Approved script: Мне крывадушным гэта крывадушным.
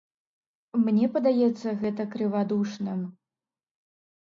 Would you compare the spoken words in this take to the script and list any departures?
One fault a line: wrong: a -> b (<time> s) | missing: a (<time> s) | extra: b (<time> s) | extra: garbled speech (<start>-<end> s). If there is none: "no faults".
wrong: крывадушным -> падаецца (1.2 s)